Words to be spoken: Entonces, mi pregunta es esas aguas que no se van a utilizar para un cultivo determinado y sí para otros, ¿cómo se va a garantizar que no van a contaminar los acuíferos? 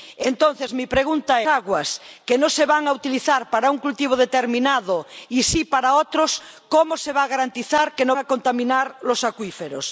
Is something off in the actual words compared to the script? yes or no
yes